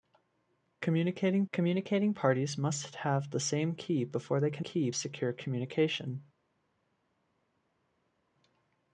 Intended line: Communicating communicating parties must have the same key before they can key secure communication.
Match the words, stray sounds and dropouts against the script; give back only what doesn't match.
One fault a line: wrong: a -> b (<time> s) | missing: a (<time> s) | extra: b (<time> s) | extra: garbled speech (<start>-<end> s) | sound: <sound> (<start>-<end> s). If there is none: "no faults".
no faults